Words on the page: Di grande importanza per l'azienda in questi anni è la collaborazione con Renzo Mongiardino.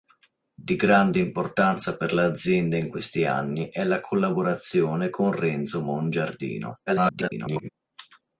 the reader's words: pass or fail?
fail